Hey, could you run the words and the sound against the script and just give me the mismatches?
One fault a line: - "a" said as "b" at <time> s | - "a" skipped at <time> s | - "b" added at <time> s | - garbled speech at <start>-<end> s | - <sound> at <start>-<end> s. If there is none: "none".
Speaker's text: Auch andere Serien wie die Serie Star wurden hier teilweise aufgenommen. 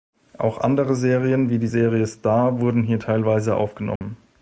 - dropout at 4.0-4.0 s